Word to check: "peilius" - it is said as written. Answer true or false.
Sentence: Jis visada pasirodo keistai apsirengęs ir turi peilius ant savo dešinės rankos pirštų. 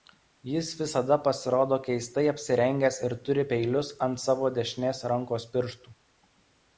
true